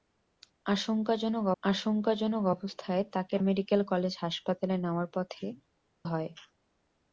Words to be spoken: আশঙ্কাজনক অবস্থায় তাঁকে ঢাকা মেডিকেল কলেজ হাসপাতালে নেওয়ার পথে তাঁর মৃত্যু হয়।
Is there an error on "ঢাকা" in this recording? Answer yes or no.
yes